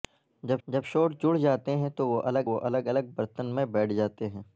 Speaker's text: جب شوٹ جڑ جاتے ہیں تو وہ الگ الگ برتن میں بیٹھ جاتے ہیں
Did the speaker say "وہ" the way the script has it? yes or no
yes